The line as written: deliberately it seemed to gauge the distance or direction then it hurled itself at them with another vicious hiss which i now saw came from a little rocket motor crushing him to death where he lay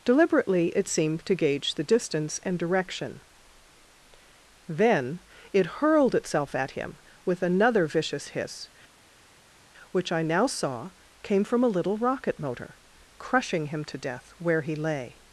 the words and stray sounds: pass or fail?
fail